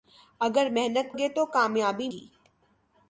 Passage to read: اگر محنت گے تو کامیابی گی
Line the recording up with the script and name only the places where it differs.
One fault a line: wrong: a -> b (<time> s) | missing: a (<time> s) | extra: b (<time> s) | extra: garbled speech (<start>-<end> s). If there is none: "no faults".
no faults